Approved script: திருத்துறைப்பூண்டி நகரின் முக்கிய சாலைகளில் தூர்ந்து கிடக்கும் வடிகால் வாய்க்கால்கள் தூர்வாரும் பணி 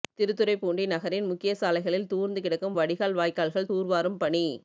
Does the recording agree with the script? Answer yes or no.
yes